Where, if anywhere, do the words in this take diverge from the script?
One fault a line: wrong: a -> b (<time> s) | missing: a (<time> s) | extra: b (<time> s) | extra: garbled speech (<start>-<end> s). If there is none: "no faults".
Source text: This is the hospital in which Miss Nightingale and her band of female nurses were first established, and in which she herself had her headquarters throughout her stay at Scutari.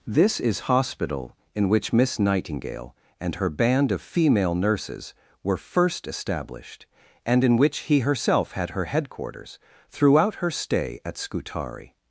missing: the (0.6 s)
wrong: she -> he (7.8 s)